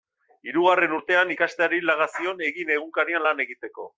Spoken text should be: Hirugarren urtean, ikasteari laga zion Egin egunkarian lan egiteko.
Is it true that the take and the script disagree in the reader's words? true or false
false